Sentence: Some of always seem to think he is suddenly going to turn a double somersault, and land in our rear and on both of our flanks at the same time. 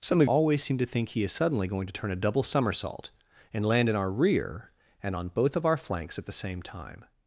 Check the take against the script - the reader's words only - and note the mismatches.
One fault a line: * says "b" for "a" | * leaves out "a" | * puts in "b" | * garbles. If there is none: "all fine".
all fine